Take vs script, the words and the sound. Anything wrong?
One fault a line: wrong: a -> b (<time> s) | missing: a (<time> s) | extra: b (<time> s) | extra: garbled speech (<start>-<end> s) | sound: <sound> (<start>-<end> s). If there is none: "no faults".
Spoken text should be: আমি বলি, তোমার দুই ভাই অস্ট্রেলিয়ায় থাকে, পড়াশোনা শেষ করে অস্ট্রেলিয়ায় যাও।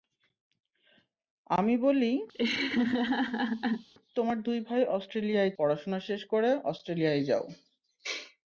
sound: laugh (2.3-3.9 s)
missing: থাকে (5.5 s)